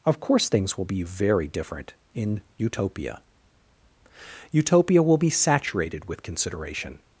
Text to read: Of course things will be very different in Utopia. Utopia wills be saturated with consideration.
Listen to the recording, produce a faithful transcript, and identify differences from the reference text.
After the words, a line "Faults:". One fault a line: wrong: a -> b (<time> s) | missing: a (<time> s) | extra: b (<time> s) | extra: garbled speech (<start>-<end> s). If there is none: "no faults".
Of course things will be very different in Utopia. Utopia will be saturated with consideration.
Faults:
wrong: wills -> will (5.0 s)